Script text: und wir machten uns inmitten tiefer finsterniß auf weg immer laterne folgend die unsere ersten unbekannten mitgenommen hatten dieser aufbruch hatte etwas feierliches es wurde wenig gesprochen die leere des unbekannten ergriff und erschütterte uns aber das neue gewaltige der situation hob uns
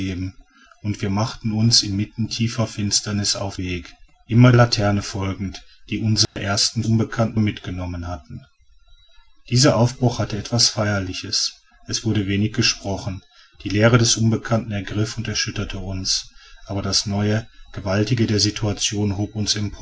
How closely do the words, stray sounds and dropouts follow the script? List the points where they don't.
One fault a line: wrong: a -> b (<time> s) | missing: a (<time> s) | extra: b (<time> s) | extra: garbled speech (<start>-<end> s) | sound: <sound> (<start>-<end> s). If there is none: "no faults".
sound: dropout (6.2-6.4 s)